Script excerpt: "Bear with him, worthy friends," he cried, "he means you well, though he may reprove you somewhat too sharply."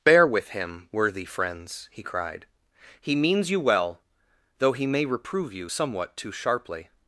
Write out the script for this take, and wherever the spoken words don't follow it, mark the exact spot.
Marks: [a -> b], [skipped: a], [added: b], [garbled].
"Bear with him, worthy friends," he cried, "he means you well, though he may reprove you somewhat too sharply."